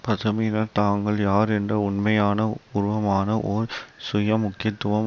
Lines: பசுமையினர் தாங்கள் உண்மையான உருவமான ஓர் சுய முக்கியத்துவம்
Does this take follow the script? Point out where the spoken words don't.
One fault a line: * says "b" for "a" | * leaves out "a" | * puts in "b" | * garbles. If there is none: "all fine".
* puts in "யார் என்ற"